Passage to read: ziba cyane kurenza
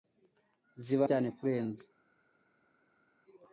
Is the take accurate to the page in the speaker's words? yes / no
yes